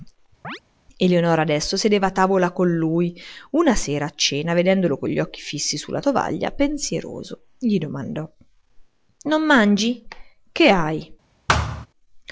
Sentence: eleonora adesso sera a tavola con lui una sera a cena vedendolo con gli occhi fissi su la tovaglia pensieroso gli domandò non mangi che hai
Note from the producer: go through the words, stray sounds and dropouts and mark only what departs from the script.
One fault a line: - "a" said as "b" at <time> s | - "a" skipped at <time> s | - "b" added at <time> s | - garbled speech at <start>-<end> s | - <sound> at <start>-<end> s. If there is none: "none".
- chirp at 0.4-0.6 s
- "sera" said as "sedeva" at 1.7 s
- thud at 11.5-11.9 s